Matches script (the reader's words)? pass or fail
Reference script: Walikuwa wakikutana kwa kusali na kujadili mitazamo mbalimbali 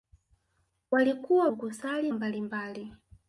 fail